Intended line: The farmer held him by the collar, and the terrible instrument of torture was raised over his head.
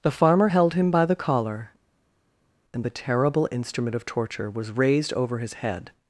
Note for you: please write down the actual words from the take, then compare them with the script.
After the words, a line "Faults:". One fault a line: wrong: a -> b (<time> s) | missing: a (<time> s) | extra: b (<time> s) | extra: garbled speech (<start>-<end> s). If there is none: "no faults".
The farmer held him by the collar, and the terrible instrument of torture was raised over his head.
Faults:
no faults